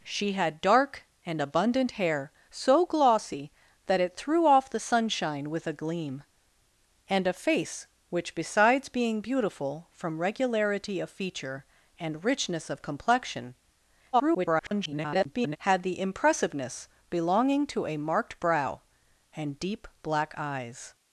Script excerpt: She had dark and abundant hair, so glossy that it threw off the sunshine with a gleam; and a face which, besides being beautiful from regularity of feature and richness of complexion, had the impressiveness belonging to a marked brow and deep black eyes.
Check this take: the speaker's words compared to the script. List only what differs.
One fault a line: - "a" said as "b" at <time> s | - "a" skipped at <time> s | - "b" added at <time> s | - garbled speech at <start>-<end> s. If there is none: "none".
- garbled speech at 14.1-15.6 s